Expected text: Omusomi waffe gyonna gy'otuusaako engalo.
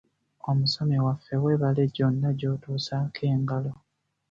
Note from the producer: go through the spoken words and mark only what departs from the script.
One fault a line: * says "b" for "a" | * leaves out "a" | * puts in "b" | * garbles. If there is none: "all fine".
* puts in "weebale"